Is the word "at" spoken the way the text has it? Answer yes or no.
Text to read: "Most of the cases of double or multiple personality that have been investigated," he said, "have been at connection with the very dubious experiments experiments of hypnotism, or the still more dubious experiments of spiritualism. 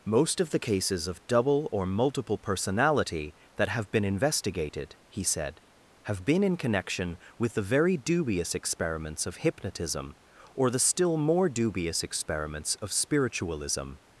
no